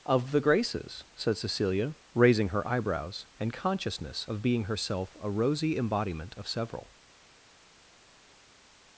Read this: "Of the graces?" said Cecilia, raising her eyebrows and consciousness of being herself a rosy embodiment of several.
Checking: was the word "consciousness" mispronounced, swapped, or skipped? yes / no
no